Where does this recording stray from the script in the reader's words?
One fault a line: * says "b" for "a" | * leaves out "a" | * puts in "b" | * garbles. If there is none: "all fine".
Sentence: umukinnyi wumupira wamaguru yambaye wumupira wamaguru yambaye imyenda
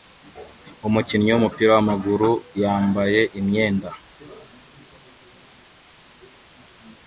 * leaves out "wumupira wamaguru yambaye"